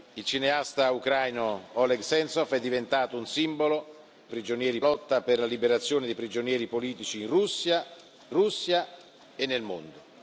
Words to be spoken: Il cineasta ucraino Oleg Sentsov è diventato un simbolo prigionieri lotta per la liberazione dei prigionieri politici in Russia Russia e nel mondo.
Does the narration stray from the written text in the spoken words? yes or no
no